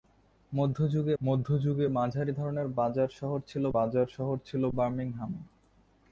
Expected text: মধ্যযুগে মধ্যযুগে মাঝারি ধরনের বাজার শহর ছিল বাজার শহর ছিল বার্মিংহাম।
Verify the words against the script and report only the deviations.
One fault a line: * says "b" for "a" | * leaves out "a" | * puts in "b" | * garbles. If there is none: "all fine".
all fine